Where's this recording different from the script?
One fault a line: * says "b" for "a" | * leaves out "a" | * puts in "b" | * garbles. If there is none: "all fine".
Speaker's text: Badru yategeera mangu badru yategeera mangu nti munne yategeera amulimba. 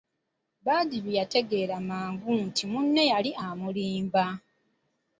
* leaves out "badru yategeera mangu"
* says "yali" for "yategeera"